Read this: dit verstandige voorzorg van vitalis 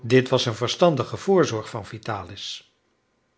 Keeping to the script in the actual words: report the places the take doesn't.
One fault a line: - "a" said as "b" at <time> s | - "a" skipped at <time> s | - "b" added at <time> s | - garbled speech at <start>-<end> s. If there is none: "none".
- "was een" added at 0.3 s